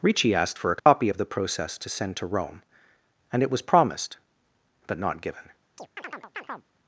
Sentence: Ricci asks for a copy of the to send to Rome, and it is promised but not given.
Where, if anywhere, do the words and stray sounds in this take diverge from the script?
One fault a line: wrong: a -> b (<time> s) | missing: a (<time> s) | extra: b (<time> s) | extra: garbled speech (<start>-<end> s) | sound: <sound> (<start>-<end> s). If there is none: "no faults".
wrong: asks -> asked (0.3 s)
sound: dropout (0.8-0.9 s)
extra: process (1.2 s)
wrong: is -> was (3.5 s)
sound: chirp (5.8-6.7 s)